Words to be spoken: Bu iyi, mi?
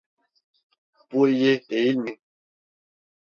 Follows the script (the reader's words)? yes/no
no